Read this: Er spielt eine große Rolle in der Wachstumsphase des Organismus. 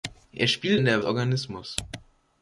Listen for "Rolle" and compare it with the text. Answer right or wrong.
wrong